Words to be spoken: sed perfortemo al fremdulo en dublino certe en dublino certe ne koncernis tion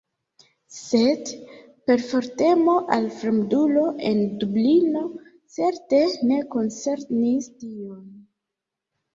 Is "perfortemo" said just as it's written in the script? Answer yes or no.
yes